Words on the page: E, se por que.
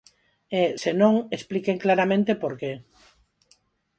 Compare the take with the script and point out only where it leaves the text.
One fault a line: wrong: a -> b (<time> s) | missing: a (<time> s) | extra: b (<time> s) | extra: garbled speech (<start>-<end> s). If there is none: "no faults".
extra: non expliquen claramente (1.0 s)